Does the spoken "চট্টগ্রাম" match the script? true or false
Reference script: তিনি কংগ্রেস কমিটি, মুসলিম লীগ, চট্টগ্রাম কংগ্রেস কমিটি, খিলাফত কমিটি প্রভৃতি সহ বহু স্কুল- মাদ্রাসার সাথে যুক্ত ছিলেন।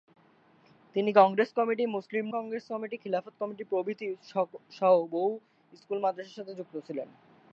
false